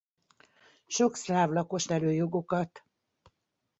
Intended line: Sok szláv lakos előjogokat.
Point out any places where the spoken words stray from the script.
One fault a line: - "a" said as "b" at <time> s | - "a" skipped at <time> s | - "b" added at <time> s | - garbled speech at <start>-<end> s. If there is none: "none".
none